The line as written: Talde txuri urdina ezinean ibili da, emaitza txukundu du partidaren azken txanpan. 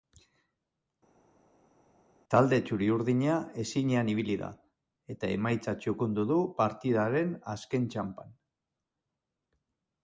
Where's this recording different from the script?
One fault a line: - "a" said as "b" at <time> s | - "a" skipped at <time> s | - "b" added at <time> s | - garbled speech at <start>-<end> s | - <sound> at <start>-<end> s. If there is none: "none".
- "eta" added at 5.1 s